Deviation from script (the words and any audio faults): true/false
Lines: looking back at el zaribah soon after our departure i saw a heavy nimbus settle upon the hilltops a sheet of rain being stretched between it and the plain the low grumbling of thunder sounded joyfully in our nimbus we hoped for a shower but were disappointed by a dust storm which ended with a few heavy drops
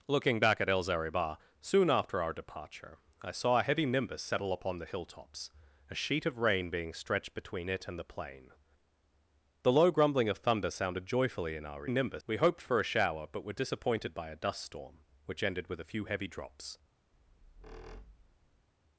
true